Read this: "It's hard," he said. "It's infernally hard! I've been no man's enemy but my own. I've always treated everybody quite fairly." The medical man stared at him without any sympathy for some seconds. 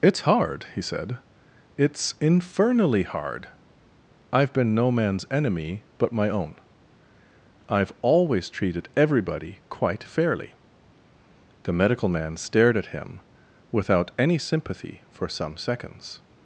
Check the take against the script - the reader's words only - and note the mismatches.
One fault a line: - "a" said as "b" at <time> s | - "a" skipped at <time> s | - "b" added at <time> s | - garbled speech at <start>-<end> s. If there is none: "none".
none